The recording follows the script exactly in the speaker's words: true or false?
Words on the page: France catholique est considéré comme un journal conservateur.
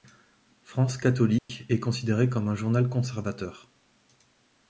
true